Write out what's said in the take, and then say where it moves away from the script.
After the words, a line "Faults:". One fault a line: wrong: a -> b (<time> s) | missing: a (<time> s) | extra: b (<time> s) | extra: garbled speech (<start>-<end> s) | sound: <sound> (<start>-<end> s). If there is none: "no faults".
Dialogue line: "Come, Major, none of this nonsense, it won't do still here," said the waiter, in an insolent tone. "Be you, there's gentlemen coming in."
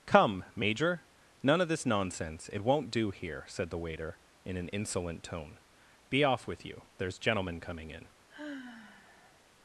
"Come, Major, none of this nonsense, it won't do here," said the waiter, in an insolent tone. "Be off with you, there's gentlemen coming in."
Faults:
missing: still (3.1 s)
extra: off with (6.2 s)
sound: sigh (8.3-9.4 s)